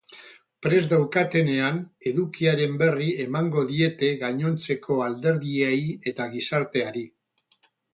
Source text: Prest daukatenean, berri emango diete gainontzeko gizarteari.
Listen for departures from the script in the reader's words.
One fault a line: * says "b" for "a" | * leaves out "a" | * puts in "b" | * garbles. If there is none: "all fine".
* puts in "edukiaren"
* puts in "alderdiei eta"